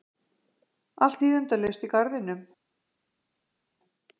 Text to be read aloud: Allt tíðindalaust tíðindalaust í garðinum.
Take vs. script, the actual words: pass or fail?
fail